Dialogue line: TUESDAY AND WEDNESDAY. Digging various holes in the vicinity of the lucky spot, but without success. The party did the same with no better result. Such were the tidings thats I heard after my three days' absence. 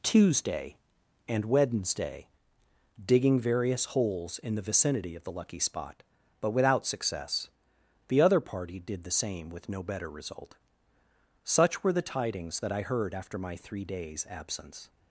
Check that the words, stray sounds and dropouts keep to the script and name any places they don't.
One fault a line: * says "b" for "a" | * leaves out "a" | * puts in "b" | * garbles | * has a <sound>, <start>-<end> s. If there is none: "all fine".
* puts in "other"
* says "that" for "thats"